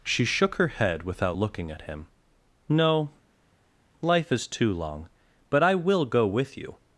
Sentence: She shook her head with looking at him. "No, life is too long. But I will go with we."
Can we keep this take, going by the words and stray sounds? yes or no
no